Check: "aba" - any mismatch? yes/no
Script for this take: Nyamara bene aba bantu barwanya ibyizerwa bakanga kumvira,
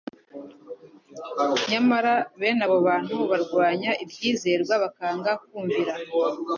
yes